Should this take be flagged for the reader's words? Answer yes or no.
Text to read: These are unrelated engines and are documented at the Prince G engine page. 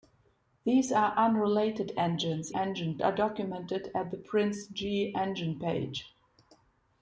yes